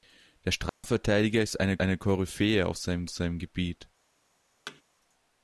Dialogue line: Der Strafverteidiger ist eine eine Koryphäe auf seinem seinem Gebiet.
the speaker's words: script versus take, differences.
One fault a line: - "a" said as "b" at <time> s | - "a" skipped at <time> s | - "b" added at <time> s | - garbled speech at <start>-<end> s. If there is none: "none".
none